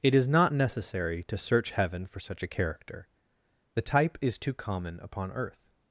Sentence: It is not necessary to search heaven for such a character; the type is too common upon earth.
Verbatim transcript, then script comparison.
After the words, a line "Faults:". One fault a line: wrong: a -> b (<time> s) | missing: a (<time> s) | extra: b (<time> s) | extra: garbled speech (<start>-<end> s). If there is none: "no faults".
It is not necessary to search heaven for such a character; the type is too common upon earth.
Faults:
no faults